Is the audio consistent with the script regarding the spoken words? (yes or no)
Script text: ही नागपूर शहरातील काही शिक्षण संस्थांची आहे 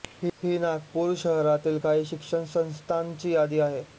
no